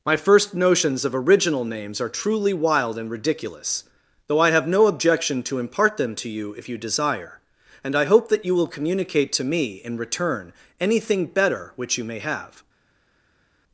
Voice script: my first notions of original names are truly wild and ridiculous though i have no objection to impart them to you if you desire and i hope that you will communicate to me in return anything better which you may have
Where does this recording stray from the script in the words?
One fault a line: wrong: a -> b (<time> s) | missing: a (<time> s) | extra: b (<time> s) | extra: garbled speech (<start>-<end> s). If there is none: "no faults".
no faults